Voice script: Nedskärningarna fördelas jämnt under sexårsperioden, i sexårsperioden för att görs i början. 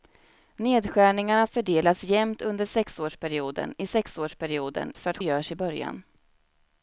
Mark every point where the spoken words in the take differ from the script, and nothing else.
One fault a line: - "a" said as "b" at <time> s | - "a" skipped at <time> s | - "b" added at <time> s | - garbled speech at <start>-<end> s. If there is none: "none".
none